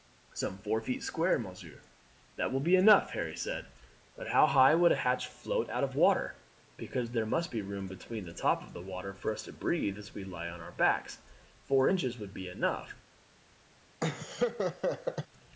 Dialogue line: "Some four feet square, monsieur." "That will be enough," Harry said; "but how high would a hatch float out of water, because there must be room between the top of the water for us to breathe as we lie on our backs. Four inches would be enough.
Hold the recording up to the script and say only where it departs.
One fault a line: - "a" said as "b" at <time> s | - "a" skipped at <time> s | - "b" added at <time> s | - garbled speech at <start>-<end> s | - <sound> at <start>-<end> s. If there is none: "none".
- laugh at 14.0-15.3 s